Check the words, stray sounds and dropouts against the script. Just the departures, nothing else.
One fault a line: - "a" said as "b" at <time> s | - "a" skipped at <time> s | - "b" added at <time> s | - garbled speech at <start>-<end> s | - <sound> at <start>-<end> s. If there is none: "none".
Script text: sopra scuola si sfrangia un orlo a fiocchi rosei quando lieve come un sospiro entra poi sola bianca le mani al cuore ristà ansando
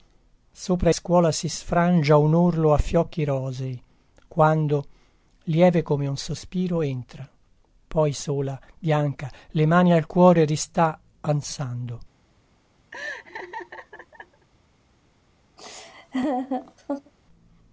- laugh at 12.9-14.5 s
- laugh at 15.6-17.1 s